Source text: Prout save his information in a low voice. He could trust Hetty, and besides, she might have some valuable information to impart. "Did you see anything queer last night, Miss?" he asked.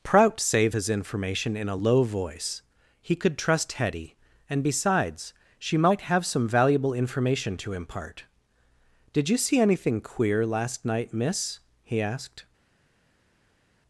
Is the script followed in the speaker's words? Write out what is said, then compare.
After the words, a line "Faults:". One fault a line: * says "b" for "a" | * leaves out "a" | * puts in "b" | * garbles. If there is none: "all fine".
Prout save his information in a low voice. He could trust Hetty, and besides, she might have some valuable information to impart. "Did you see anything queer last night, Miss?" he asked.
Faults:
all fine